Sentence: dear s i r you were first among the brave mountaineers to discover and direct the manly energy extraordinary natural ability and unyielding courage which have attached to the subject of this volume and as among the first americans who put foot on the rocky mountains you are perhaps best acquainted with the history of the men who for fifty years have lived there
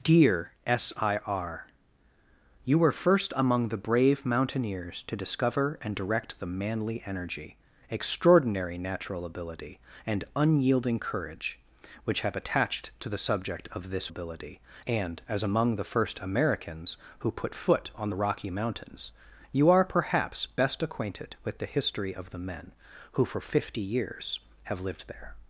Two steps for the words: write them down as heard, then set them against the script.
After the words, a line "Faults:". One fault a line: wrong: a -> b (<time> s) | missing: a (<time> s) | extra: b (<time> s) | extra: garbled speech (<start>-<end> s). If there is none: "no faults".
dear s i r you were first among the brave mountaineers to discover and direct the manly energy extraordinary natural ability and unyielding courage which have attached to the subject of this ability and as among the first americans who put foot on the rocky mountains you are perhaps best acquainted with the history of the men who for fifty years have lived there
Faults:
wrong: volume -> ability (14.1 s)